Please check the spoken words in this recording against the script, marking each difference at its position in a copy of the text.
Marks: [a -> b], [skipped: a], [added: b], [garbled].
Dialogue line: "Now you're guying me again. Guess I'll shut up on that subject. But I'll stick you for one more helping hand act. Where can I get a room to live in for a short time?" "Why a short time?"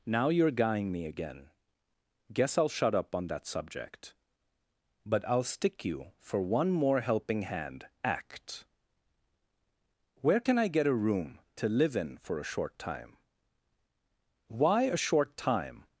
"Now you're guying me again. Guess I'll shut up on that subject. But I'll stick you for one more helping hand act. Where can I get a room to live in for a short time?" "Why a short time?"